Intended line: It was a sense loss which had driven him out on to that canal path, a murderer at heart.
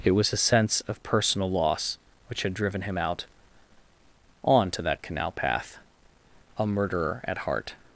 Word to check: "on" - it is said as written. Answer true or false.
true